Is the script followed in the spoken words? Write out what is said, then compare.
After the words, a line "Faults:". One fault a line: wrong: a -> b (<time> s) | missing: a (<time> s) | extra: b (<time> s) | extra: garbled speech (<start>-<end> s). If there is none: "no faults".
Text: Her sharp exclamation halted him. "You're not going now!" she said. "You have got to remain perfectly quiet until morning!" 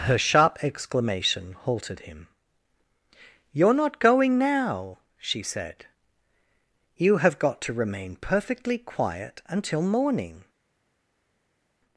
Her sharp exclamation halted him. "You're not going now!" she said. "You have got to remain perfectly quiet until morning!"
Faults:
no faults